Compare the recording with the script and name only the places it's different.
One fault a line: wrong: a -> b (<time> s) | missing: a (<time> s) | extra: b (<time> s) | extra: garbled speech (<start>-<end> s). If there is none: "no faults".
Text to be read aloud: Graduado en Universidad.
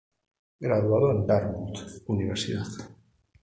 extra: Dartmouth (1.2 s)